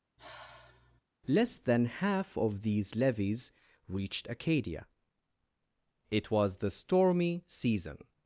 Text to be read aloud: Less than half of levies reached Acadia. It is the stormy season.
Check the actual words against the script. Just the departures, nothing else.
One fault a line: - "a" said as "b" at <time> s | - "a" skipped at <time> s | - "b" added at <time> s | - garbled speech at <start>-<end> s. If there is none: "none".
- "these" added at 2.6 s
- "is" said as "was" at 6.3 s